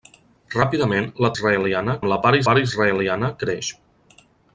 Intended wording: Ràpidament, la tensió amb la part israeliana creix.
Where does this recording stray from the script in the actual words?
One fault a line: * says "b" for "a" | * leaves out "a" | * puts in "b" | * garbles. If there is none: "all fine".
* says "israeliana" for "tensió"
* puts in "part"